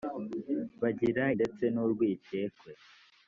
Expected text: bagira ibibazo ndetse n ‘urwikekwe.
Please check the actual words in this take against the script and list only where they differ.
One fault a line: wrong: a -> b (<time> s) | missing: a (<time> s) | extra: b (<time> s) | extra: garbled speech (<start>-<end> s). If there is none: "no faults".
missing: ibibazo (1.2 s)